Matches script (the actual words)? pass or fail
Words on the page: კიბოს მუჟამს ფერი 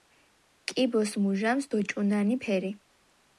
fail